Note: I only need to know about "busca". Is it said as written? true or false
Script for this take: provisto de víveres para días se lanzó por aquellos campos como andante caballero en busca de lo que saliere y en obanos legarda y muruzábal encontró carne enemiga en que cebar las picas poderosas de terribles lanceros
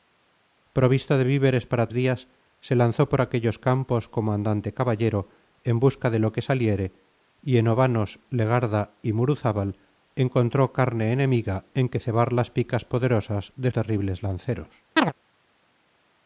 true